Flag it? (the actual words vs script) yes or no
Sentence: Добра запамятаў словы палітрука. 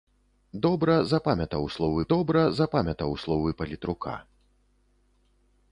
yes